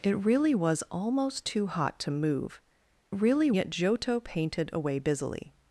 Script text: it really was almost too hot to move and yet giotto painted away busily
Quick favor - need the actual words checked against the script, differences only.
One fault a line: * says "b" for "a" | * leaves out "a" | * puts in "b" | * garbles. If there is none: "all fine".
* says "really" for "and"